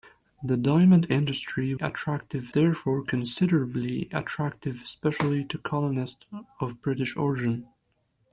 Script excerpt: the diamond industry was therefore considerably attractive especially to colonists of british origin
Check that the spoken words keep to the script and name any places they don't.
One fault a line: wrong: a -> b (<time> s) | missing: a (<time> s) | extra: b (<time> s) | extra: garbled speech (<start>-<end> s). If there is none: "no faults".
wrong: was -> attractive (1.8 s)